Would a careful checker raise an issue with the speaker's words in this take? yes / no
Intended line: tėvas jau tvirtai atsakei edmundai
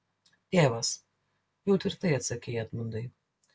no